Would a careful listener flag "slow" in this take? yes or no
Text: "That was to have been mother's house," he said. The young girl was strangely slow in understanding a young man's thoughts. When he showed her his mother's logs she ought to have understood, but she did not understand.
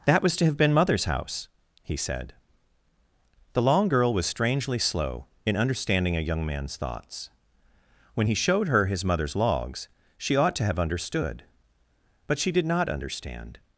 no